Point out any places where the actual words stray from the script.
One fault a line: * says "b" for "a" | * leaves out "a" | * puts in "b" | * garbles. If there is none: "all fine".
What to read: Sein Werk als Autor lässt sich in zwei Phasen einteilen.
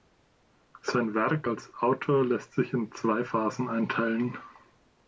all fine